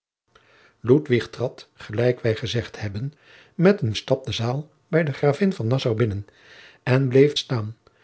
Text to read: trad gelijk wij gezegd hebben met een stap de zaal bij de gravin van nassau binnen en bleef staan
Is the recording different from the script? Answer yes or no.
no